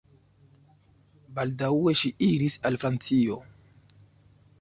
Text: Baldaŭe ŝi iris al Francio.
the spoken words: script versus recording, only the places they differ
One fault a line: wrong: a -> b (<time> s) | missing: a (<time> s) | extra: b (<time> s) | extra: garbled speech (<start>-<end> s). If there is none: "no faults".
no faults